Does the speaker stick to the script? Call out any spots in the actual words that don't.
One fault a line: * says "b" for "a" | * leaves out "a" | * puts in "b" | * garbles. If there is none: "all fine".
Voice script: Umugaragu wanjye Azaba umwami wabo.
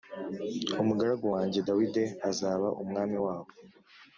* puts in "Dawidi"